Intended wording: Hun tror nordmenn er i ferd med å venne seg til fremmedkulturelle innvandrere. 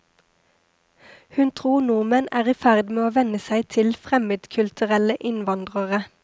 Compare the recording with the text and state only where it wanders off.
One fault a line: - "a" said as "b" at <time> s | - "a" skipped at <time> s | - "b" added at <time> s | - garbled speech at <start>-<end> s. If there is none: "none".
none